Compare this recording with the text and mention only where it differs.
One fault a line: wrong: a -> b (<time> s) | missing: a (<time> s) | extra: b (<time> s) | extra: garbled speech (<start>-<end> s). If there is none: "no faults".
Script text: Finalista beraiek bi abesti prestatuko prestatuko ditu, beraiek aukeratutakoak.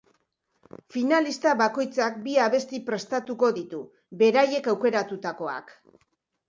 wrong: beraiek -> bakoitzak (1.6 s)
missing: prestatuko (3.5 s)